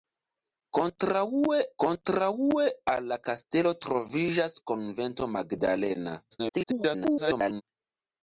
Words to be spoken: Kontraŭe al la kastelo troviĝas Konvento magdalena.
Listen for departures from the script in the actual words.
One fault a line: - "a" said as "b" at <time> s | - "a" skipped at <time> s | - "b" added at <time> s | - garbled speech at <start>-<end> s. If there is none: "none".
- "kontraŭe" added at 1.8 s
- garbled speech at 6.3-7.6 s